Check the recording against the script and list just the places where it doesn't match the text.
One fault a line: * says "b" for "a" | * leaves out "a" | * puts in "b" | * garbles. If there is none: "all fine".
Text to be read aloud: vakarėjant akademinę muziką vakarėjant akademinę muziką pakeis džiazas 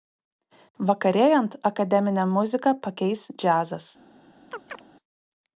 * leaves out "vakarėjant akademinę muziką"